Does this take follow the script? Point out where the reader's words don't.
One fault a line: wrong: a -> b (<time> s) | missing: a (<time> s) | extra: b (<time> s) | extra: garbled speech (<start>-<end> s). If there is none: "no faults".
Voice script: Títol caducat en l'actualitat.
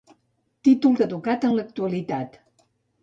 no faults